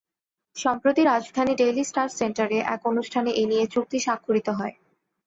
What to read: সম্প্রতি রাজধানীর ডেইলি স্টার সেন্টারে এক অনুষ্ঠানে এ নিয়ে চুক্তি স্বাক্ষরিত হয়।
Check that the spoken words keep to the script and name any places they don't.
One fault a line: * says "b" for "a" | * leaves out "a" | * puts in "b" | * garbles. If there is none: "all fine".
all fine